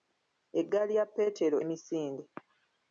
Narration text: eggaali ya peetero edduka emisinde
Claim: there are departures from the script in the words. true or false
true